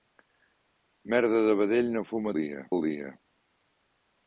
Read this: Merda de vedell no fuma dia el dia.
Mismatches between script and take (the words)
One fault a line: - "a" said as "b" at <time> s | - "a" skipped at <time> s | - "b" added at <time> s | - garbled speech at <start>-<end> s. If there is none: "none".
none